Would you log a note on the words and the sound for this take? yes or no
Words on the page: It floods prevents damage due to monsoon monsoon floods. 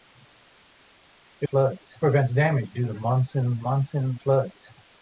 no